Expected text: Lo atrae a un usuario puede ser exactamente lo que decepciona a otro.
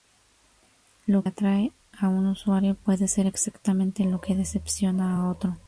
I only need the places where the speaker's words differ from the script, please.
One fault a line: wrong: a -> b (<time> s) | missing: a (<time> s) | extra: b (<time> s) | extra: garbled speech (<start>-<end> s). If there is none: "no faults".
no faults